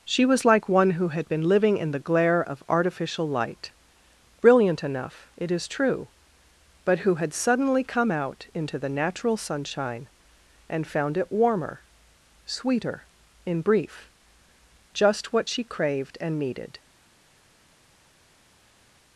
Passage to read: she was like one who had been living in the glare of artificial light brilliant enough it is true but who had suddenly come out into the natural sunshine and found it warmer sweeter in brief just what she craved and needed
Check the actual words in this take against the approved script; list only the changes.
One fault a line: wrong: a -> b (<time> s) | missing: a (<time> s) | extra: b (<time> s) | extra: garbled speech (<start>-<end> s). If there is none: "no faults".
no faults